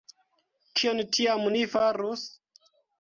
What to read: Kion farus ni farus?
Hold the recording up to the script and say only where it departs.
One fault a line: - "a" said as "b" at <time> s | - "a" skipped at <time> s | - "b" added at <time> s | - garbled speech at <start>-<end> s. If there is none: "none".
- "farus" said as "tiam" at 1.2 s